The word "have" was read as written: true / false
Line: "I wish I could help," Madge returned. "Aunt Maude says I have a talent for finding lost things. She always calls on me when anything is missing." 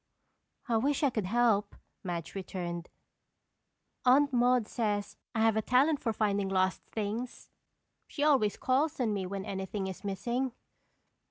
true